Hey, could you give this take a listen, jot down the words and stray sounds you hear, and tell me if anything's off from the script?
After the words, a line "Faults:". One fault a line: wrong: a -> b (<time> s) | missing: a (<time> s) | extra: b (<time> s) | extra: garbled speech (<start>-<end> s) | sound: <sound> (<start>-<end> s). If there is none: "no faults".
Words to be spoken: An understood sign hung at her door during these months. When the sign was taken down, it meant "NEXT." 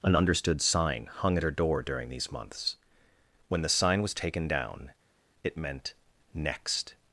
An understood sign hung at her door during these months. When the sign was taken down, it meant "NEXT."
Faults:
no faults